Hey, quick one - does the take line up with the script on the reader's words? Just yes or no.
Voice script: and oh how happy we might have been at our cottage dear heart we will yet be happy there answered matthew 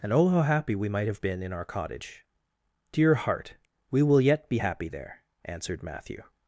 no